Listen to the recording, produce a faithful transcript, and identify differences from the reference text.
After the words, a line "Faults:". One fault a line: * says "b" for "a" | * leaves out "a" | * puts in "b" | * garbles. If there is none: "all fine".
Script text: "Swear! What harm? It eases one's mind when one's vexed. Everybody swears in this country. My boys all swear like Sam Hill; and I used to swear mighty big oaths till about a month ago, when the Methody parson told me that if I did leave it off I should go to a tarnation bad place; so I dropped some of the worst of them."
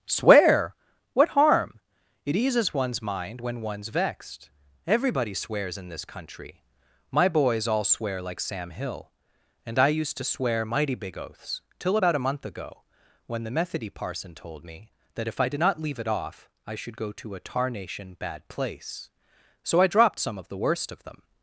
"Swear! What harm? It eases one's mind when one's vexed. Everybody swears in this country. My boys all swear like Sam Hill; and I used to swear mighty big oaths till about a month ago, when the Methody parson told me that if I did not leave it off I should go to a tarnation bad place; so I dropped some of the worst of them."
Faults:
* puts in "not"